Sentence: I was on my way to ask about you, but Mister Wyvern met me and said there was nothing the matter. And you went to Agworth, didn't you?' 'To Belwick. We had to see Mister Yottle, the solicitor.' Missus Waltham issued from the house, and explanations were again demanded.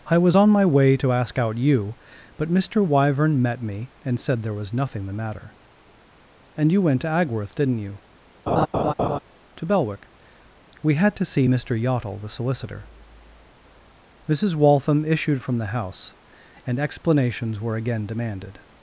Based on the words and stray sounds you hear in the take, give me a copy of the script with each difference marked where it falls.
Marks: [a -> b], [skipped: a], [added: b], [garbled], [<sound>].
I was on my way to ask [about -> out] you, but Mister Wyvern met me and said there was nothing the matter. And you went to Agworth, didn't you?' [laugh] 'To Belwick. We had to see Mister Yottle, the solicitor.' Missus Waltham issued from the house, and explanations were again demanded.